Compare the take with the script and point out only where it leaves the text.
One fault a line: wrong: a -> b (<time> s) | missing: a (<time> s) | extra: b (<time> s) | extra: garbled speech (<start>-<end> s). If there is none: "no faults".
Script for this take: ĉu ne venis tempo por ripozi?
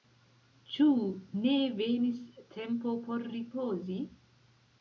no faults